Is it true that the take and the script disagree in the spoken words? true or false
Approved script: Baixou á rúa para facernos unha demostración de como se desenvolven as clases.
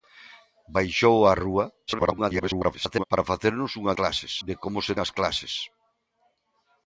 true